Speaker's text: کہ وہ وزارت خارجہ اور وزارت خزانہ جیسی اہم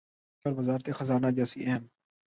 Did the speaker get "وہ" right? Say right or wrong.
wrong